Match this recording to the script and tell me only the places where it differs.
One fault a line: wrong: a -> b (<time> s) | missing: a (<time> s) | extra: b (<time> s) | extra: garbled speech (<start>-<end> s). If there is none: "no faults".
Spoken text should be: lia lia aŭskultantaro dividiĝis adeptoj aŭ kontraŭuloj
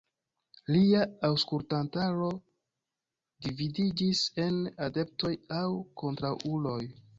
missing: lia (1.0 s)
extra: en (4.5 s)